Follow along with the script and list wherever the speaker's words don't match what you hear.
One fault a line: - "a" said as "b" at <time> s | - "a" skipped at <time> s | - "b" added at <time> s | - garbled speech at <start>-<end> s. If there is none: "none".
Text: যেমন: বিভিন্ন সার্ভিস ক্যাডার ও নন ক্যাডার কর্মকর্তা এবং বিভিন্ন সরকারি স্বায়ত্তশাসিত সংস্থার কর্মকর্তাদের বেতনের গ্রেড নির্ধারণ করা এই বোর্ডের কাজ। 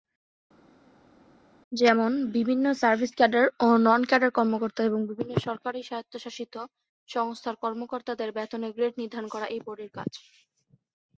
none